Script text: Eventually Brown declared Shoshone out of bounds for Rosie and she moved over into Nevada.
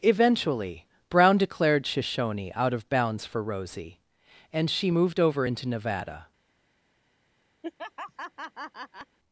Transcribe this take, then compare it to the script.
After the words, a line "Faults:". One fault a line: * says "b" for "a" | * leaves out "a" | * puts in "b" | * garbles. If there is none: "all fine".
Eventually Brown declared Shoshone out of bounds for Rosie and she moved over into Nevada.
Faults:
all fine